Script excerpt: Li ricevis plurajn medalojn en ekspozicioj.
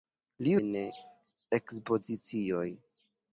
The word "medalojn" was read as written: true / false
false